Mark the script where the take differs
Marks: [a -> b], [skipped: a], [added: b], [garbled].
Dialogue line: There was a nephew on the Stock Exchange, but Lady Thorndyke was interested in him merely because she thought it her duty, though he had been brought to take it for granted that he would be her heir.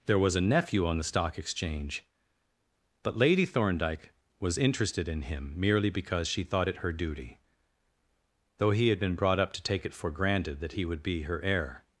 There was a nephew on the Stock Exchange, but Lady Thorndyke was interested in him merely because she thought it her duty, though he had been brought [added: up] to take it for granted that he would be her heir.